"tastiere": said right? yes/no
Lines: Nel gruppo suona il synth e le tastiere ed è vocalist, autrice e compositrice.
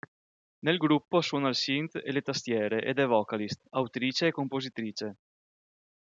yes